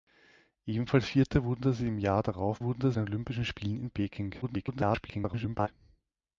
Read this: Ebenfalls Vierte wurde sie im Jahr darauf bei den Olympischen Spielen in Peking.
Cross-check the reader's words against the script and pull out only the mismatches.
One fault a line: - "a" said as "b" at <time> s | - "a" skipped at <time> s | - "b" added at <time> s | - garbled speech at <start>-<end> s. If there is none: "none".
- "bei" said as "wurde" at 2.6 s
- garbled speech at 4.4-5.7 s